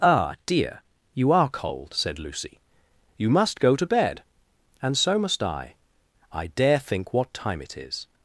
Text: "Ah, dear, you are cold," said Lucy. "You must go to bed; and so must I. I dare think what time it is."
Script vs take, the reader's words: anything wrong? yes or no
no